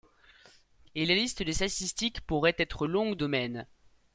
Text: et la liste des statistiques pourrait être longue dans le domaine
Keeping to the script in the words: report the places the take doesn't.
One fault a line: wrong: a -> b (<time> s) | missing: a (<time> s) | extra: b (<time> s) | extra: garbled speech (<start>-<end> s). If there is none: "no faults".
missing: dans le (3.2 s)